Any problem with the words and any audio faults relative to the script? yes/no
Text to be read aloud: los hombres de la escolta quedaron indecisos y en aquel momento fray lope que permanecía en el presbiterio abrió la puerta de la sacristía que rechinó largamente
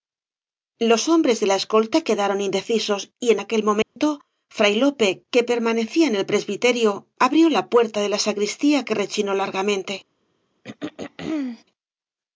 yes